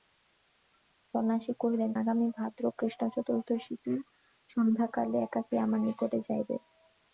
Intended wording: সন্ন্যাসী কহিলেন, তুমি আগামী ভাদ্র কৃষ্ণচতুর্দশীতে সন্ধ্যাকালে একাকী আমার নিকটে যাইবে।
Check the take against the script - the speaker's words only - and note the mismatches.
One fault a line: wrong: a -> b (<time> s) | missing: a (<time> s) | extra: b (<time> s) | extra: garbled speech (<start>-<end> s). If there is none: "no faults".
missing: তুমি (1.9 s)